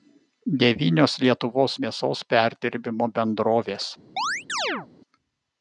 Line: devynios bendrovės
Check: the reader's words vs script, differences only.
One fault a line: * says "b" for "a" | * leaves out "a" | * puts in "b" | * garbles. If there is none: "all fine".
* puts in "lietuvos mėsos perdirbimo"